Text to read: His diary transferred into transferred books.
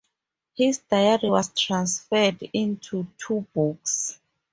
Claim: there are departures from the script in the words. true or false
true